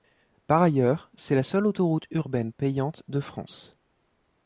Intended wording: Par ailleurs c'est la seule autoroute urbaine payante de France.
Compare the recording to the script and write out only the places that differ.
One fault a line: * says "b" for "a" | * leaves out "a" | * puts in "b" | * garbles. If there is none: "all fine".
all fine